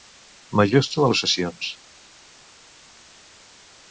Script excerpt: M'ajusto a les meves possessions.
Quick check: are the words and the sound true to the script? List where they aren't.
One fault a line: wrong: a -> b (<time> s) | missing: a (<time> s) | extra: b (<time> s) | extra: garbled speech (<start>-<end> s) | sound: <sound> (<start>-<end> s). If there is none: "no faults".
missing: les meves (1.1 s)